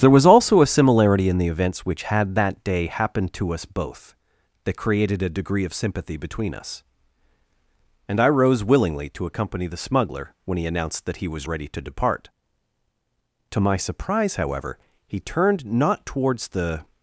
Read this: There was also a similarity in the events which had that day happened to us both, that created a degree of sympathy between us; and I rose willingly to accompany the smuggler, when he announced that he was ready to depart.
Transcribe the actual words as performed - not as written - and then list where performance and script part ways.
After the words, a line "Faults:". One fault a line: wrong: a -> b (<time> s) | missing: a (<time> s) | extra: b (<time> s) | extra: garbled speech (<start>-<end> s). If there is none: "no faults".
There was also a similarity in the events which had that day happened to us both, that created a degree of sympathy between us; and I rose willingly to accompany the smuggler, when he announced that he was ready to depart. To my surprise, however, he turned not towards the
Faults:
extra: To my surprise however he turned not towards the (13.5 s)